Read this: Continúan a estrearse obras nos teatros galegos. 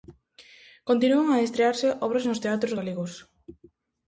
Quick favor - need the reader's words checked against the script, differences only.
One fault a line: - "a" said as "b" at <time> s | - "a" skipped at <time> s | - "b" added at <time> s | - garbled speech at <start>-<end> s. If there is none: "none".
none